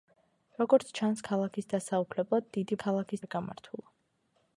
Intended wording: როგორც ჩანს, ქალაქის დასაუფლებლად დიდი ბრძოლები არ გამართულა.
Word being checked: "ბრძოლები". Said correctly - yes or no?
no